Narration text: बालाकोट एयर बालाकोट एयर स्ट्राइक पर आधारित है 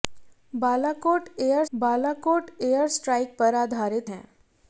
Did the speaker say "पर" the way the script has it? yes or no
yes